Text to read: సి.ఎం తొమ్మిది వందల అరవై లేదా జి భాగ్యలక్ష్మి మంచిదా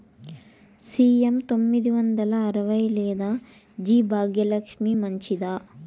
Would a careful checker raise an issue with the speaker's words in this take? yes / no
no